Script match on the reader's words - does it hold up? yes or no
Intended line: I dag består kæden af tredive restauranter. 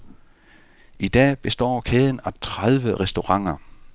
yes